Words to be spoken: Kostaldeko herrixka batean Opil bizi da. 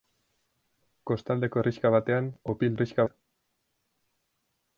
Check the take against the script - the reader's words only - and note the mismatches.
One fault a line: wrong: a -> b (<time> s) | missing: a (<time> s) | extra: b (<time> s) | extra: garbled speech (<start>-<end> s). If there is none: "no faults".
wrong: bizi -> herrixka (2.8 s)